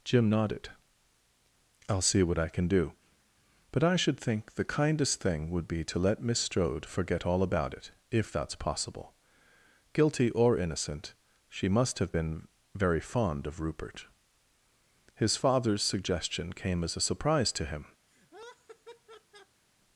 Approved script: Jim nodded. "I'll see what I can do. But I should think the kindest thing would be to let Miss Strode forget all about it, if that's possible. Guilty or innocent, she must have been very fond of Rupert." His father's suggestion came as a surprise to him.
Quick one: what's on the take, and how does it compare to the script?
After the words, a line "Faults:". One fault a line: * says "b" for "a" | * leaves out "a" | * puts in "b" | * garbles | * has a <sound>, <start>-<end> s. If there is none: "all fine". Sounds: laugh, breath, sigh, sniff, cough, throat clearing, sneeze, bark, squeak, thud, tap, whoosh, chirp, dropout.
Jim nodded. "I'll see what I can do. But I should think the kindest thing would be to let Miss Strode forget all about it, if that's possible. Guilty or innocent, she must have been very fond of Rupert." His father's suggestion came as a surprise to him.
Faults:
* has a laugh, 18.1-19.6 s